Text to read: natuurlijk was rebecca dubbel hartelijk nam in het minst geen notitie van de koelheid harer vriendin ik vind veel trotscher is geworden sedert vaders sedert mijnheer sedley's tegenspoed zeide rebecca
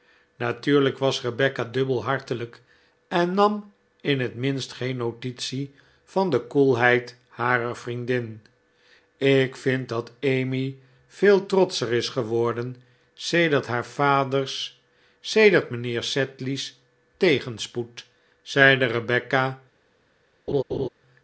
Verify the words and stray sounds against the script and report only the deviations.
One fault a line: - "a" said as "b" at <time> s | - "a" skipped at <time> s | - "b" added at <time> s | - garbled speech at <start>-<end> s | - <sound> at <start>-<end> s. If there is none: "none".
- "en" added at 3.1 s
- "dat emmy" added at 9.9 s
- "haar" added at 13.7 s
- laugh at 20.5-20.9 s